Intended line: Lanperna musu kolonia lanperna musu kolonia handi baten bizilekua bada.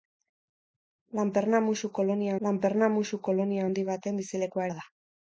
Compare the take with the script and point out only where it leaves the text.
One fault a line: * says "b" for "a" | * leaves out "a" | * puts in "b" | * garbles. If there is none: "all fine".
all fine